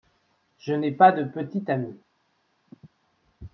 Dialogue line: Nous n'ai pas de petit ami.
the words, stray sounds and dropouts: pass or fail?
fail